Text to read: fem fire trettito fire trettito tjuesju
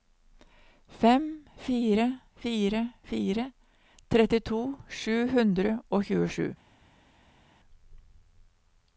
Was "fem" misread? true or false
false